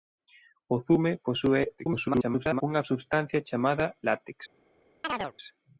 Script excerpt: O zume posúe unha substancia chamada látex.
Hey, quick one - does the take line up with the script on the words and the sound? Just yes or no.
no